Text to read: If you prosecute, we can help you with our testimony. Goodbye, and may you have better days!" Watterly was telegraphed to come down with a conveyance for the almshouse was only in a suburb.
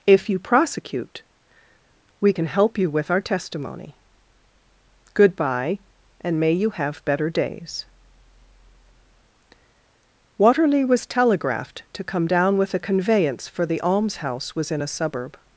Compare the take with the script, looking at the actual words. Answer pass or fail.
fail